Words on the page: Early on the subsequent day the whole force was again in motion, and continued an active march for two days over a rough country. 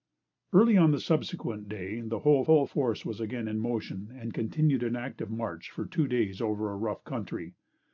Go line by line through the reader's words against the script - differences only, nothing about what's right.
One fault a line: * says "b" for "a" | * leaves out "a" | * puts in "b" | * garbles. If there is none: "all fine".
* puts in "whole"